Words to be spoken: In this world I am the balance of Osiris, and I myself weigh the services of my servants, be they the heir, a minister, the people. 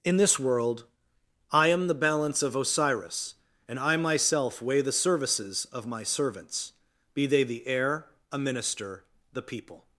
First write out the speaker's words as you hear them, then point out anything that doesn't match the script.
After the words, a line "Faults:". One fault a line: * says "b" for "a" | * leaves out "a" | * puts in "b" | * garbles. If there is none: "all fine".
In this world I am the balance of Osiris, and I myself weigh the services of my servants, be they the heir, a minister, the people.
Faults:
all fine